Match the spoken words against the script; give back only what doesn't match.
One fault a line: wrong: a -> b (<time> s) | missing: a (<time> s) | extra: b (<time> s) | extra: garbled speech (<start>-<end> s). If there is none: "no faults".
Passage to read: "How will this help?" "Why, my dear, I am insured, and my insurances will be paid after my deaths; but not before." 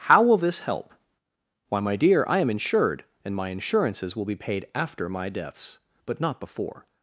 no faults